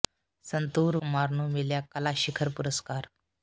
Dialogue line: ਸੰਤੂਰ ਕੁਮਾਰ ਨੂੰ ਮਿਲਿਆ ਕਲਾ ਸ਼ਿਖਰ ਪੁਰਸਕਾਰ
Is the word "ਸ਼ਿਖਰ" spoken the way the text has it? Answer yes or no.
yes